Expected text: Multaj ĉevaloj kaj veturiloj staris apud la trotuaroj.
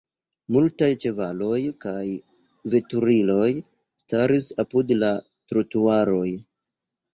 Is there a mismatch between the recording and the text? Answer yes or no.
no